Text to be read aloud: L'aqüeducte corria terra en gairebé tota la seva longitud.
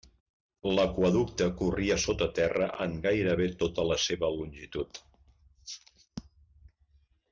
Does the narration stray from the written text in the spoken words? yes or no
yes